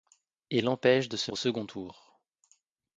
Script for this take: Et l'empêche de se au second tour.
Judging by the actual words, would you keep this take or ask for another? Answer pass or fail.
pass